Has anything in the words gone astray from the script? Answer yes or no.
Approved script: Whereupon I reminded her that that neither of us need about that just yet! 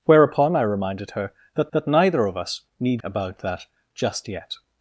no